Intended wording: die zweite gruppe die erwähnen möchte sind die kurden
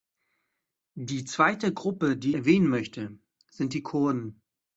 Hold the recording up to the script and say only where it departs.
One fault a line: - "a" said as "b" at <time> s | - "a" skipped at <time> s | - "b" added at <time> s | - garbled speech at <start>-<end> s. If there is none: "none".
none